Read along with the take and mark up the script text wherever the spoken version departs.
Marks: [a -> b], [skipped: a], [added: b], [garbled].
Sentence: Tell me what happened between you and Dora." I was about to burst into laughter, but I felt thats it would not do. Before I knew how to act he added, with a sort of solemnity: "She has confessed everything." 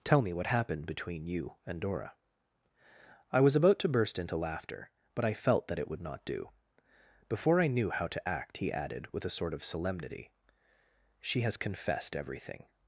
Tell me what happened between you and Dora." I was about to burst into laughter, but I felt [thats -> that] it would not do. Before I knew how to act he added, with a sort of solemnity: "She has confessed everything."